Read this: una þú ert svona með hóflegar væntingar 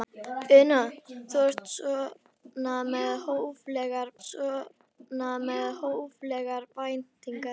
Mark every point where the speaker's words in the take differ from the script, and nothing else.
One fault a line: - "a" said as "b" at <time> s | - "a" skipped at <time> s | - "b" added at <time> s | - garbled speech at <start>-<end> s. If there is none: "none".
- "svona með hóflegar" added at 4.3 s